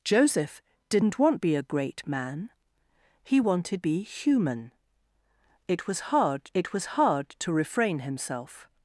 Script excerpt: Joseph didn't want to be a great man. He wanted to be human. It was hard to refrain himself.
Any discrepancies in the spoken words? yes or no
yes